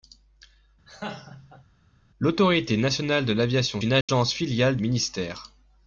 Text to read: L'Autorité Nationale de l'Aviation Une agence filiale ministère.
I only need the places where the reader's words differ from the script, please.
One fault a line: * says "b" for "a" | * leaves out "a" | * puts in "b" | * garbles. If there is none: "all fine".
all fine